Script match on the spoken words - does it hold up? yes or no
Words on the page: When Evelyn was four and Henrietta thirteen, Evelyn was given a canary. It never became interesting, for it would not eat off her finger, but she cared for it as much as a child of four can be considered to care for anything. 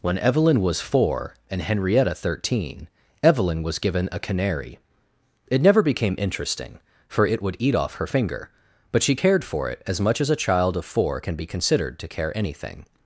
no